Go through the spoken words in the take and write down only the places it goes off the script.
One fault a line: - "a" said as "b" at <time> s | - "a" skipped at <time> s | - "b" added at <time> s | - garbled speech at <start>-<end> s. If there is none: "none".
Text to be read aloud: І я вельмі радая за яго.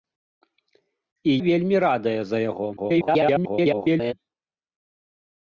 - "я" skipped at 1.4 s
- garbled speech at 2.8-4.1 s